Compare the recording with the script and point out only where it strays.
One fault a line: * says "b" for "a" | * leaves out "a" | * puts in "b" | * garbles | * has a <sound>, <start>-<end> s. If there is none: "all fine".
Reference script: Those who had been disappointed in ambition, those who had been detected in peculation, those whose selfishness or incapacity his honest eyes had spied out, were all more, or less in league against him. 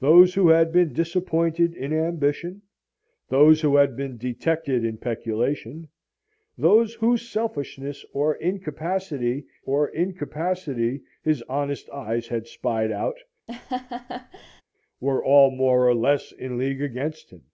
* puts in "or incapacity"
* has a laugh, 13.5-14.6 s